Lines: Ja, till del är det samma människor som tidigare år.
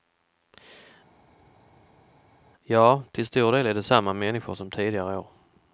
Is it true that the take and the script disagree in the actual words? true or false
true